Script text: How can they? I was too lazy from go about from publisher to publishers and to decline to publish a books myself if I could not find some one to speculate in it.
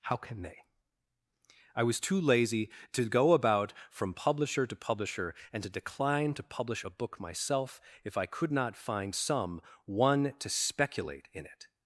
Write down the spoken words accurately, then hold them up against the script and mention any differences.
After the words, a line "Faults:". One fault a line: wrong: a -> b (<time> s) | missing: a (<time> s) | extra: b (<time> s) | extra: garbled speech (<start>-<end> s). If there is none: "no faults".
How can they? I was too lazy to go about from publisher to publisher and to decline to publish a book myself if I could not find some one to speculate in it.
Faults:
wrong: from -> to (2.9 s)
wrong: publishers -> publisher (4.8 s)
wrong: books -> book (6.9 s)